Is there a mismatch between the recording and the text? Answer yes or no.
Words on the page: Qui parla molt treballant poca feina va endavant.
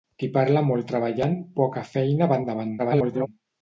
yes